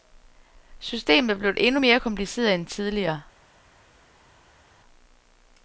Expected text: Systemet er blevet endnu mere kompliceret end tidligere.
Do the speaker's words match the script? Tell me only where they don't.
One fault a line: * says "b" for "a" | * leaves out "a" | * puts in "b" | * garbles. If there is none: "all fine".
all fine